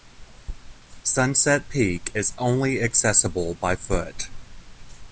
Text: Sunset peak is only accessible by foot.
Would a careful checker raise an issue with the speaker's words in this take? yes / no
no